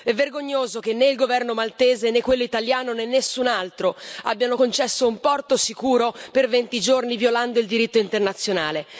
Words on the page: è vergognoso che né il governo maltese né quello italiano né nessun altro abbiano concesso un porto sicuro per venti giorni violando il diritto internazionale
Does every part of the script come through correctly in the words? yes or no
yes